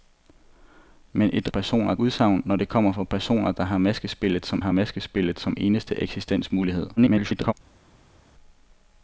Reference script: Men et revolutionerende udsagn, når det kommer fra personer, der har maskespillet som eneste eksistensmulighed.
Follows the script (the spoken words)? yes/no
no